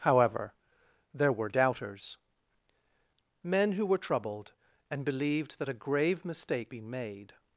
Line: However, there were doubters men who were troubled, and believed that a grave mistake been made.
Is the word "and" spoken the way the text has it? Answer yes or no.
yes